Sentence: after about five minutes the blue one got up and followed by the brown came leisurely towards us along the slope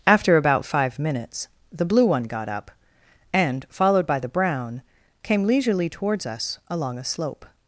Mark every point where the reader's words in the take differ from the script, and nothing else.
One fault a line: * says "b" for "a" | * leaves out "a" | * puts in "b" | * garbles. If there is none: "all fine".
* says "a" for "the"